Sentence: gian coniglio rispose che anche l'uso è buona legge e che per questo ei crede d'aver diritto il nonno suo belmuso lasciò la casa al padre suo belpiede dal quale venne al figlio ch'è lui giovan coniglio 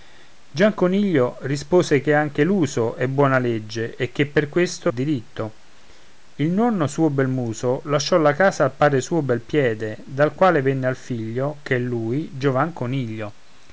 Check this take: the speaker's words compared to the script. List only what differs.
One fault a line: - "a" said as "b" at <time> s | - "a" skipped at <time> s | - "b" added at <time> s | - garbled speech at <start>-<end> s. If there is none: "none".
- "ei crede d'aver" skipped at 4.9 s